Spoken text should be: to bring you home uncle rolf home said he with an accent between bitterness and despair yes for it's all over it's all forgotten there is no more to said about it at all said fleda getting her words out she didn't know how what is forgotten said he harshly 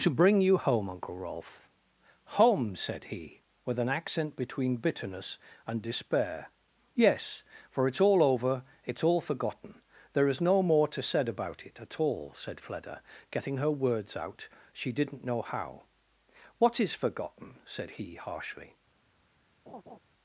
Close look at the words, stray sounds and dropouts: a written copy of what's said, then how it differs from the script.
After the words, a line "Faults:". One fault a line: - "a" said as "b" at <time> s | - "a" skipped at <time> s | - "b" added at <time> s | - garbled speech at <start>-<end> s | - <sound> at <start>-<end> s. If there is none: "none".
to bring you home uncle rolf home said he with an accent between bitterness and despair yes for it's all over it's all forgotten there is no more to said about it at all said fleda getting her words out she didn't know how what is forgotten said he harshly
Faults:
- laugh at 19.7-20.0 s